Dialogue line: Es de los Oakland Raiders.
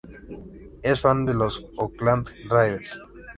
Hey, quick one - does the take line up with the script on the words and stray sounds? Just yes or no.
no